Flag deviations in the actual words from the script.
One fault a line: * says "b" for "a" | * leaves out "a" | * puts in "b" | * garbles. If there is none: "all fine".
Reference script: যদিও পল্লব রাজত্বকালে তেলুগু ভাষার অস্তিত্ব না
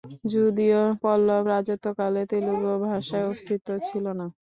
* puts in "ছিল"